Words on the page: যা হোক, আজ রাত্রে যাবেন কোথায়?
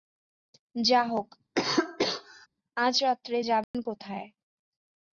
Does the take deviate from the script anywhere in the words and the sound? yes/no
yes